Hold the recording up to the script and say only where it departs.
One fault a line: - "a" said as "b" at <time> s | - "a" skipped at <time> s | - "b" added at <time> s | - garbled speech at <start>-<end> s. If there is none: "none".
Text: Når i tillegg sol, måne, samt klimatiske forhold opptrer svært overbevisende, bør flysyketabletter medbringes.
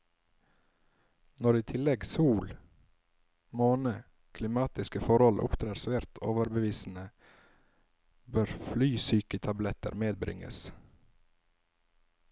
- "samt" skipped at 3.9 s